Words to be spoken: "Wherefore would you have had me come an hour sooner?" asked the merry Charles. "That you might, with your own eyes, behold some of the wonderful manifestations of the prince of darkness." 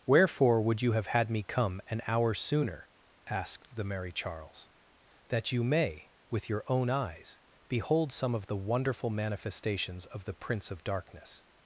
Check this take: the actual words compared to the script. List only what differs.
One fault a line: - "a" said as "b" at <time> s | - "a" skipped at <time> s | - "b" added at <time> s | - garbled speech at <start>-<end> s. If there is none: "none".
- "might" said as "may" at 5.6 s